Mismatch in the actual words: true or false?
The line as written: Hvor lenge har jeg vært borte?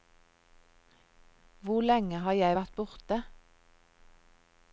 false